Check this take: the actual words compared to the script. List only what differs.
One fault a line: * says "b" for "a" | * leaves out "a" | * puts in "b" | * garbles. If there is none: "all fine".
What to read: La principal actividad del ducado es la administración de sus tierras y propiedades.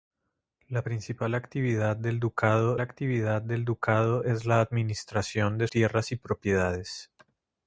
* puts in "actividad del ducado"
* leaves out "sus"